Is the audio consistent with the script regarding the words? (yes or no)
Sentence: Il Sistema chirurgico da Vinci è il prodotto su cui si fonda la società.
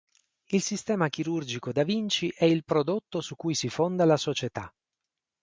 yes